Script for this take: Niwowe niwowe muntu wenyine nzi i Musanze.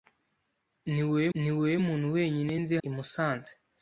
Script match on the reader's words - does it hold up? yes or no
yes